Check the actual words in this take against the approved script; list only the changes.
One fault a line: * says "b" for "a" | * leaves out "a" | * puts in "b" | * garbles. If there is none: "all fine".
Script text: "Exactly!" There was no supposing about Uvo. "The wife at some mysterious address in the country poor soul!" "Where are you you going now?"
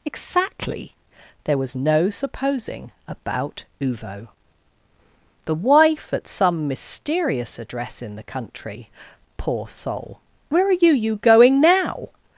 all fine